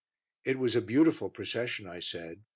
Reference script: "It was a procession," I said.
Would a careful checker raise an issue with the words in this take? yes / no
yes